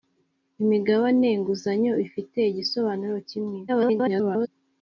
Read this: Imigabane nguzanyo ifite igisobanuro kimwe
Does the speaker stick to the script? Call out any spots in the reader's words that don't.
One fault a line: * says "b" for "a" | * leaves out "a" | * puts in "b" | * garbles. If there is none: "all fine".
* garbles